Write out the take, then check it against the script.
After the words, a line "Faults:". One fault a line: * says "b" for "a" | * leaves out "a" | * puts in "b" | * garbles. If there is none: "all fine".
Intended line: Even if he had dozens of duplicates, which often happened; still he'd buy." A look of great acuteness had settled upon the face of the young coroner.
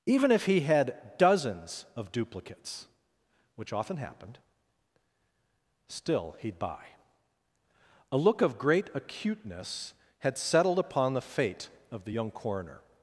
Even if he had dozens of duplicates, which often happened; still he'd buy." A look of great acuteness had settled upon the fate of the young coroner.
Faults:
* says "fate" for "face"